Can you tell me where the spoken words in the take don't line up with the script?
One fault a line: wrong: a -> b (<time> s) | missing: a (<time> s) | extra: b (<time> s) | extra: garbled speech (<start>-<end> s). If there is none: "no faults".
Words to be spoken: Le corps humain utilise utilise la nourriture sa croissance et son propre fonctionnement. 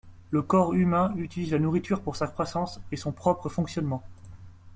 missing: utilise (1.5 s)
extra: pour (2.0 s)